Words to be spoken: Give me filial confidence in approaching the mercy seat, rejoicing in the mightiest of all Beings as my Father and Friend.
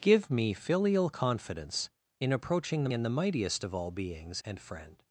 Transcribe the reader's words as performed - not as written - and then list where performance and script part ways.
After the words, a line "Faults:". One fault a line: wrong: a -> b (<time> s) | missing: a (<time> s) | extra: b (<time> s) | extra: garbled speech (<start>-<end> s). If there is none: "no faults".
Give me filial confidence in approaching the in the mightiest of all Beings and Friend.
Faults:
missing: mercy seat rejoicing (2.9 s)
missing: as my Father (4.4 s)